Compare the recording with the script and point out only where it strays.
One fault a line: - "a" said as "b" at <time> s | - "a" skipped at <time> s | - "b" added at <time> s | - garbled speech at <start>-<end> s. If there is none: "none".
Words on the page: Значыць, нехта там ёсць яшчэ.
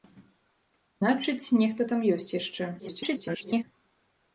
- garbled speech at 2.8-3.6 s